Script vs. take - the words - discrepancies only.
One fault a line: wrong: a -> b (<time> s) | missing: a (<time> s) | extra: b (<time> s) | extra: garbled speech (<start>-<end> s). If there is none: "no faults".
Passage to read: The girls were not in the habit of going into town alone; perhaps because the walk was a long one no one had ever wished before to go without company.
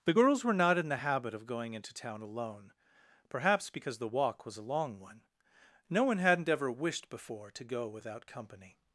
wrong: had -> hadn't (6.2 s)